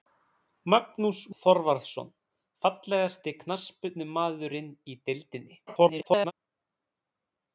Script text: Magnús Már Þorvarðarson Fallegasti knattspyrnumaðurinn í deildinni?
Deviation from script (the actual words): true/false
true